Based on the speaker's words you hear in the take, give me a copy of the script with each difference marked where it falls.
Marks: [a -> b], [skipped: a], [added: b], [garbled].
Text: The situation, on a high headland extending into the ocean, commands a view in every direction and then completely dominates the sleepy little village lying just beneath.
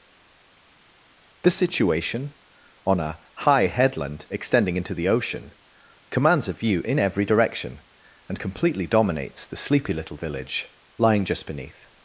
The situation, on a high headland extending into the ocean, commands a view in every direction and [skipped: then] completely dominates the sleepy little village lying just beneath.